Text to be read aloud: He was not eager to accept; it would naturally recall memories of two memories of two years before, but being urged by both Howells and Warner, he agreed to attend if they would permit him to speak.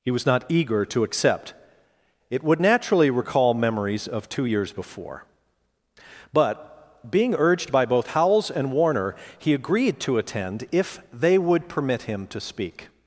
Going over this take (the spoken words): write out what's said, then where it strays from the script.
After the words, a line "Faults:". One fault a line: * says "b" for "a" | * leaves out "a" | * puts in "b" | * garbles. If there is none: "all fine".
He was not eager to accept; it would naturally recall memories of two years before, but being urged by both Howells and Warner, he agreed to attend if they would permit him to speak.
Faults:
* leaves out "memories of two"